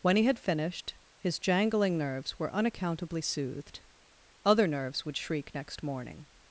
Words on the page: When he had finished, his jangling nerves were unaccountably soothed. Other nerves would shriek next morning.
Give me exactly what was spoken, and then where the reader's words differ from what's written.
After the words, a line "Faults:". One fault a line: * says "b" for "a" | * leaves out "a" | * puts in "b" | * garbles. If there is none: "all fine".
When he had finished, his jangling nerves were unaccountably soothed. Other nerves would shriek next morning.
Faults:
all fine